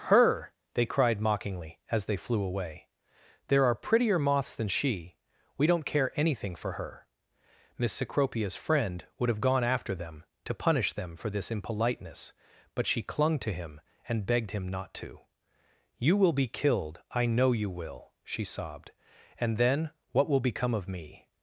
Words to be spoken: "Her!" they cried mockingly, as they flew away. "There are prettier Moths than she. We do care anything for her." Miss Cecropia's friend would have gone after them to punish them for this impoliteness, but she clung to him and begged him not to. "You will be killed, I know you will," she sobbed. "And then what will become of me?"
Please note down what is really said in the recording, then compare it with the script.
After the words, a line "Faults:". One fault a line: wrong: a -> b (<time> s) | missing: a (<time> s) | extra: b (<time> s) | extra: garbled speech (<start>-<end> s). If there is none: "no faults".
"Her!" they cried mockingly, as they flew away. "There are prettier Moths than she. We don't care anything for her." Miss Cecropia's friend would have gone after them to punish them for this impoliteness, but she clung to him and begged him not to. "You will be killed, I know you will," she sobbed. "And then what will become of me?"
Faults:
wrong: do -> don't (5.7 s)